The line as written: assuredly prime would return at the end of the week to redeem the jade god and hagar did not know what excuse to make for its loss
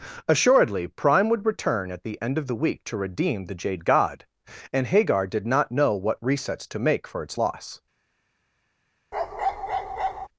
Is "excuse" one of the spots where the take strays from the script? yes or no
yes